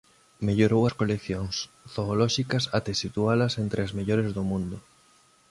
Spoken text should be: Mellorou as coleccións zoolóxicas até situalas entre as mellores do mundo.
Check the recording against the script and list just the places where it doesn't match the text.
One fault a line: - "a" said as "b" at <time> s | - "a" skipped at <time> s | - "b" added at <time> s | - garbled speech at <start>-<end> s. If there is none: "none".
none